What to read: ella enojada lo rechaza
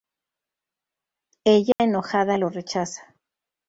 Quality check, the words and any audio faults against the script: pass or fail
fail